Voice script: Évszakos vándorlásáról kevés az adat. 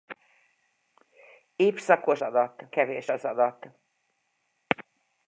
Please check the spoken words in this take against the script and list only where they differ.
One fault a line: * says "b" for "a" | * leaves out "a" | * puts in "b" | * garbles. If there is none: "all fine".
* says "adat" for "vándorlásáról"